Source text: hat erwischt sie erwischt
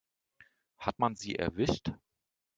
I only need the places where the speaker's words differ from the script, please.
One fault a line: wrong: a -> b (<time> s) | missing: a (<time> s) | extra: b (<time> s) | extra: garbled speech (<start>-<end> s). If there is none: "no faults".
wrong: erwischt -> man (1.0 s)